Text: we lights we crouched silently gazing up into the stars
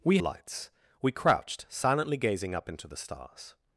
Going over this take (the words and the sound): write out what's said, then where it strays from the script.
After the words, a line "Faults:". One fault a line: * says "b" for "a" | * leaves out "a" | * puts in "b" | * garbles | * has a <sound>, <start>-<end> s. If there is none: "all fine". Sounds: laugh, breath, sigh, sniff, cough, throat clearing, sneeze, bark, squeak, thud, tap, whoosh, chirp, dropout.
we lights we crouched silently gazing up into the stars
Faults:
all fine